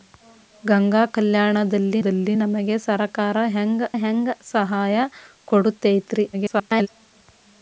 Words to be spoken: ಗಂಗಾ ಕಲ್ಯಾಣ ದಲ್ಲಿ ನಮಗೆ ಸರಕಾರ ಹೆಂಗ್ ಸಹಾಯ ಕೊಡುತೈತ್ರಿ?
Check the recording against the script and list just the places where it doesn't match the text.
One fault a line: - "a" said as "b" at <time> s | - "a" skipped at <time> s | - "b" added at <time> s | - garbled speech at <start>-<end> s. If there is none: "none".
- "ದಲ್ಲಿ" added at 2.0 s
- "ಹೆಂಗ್" added at 4.0 s
- garbled speech at 6.3-6.9 s